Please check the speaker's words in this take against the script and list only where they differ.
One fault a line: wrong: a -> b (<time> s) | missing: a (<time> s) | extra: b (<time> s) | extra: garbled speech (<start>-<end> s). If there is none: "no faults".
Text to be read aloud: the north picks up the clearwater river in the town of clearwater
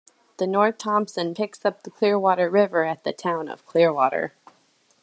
extra: thompson (0.8 s)
wrong: in -> at (2.8 s)